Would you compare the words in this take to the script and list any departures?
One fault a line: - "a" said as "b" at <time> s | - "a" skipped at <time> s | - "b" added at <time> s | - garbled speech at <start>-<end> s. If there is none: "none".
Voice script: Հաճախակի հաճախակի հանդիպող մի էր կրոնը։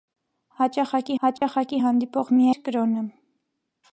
none